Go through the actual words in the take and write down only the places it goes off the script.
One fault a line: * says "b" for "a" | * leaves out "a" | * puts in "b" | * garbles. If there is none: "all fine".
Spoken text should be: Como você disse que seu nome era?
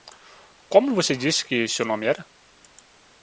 all fine